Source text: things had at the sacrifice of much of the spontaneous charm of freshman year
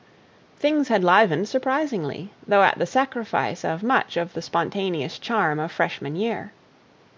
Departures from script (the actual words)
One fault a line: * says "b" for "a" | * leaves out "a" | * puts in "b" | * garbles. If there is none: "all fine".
* puts in "livened surprisingly though"